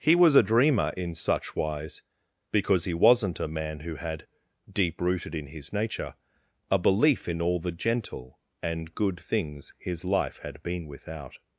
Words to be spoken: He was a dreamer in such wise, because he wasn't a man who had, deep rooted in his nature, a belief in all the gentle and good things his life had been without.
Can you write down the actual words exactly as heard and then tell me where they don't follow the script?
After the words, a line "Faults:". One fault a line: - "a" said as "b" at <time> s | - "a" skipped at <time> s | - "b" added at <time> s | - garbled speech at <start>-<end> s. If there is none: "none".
He was a dreamer in such wise, because he wasn't a man who had, deep rooted in his nature, a belief in all the gentle and good things his life had been without.
Faults:
none